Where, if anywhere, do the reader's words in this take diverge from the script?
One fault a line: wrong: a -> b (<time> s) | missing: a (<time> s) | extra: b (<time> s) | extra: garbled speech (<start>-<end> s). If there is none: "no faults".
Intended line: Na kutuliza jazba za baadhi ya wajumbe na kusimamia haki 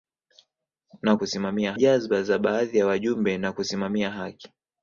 wrong: kutuliza -> kusimamia (1.2 s)